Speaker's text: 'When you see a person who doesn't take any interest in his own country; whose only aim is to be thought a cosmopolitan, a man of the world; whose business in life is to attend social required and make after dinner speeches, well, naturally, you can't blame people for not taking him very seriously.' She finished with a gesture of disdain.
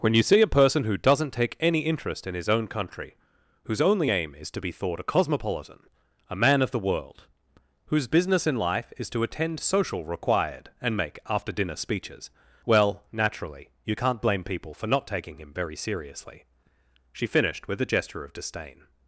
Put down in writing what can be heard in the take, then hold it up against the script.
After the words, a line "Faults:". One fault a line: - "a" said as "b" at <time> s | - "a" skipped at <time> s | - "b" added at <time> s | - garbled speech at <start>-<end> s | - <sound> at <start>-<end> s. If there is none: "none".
'When you see a person who doesn't take any interest in his own country; whose only aim is to be thought a cosmopolitan, a man of the world; whose business in life is to attend social required and make after dinner speeches, well, naturally, you can't blame people for not taking him very seriously.' She finished with a gesture of disdain.
Faults:
none